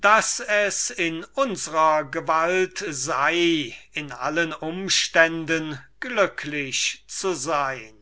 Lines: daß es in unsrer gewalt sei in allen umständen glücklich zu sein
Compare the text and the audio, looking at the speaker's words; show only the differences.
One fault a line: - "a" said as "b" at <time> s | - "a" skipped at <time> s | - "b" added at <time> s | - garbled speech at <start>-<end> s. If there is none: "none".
none